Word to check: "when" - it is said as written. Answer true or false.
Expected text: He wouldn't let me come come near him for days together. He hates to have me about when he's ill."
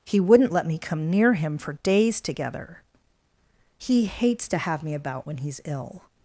true